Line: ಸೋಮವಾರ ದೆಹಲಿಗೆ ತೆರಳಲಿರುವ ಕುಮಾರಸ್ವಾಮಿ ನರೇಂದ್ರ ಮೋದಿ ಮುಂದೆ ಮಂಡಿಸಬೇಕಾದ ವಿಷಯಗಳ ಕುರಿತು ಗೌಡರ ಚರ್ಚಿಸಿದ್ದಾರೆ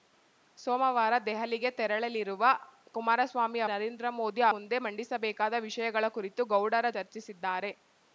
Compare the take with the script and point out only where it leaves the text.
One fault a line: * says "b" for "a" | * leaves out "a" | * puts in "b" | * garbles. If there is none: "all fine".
all fine